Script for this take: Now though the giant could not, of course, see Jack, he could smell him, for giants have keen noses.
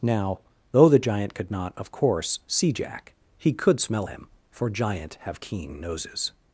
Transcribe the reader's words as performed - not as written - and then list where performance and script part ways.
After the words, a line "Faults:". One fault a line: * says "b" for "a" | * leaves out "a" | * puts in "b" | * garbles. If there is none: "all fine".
Now though the giant could not, of course, see Jack, he could smell him, for giant have keen noses.
Faults:
* says "giant" for "giants"